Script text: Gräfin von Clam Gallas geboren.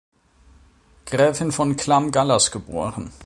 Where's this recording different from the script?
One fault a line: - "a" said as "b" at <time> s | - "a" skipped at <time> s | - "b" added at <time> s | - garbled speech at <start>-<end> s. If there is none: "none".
none